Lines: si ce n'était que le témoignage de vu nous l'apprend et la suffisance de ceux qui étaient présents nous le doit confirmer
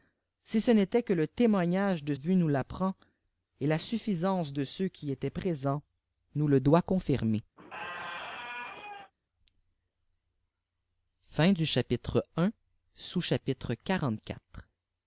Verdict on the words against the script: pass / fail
pass